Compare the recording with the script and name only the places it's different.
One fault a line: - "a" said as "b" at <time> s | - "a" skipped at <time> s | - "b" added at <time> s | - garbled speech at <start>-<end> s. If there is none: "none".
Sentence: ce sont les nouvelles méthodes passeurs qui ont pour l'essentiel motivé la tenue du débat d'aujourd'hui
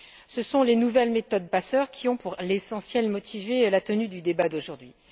none